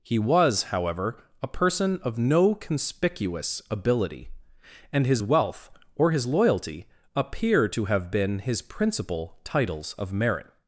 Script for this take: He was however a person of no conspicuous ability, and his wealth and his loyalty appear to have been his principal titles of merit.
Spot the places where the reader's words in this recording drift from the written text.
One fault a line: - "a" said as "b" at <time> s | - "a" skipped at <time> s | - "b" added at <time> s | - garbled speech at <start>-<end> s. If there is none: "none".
- "and" said as "or" at 5.9 s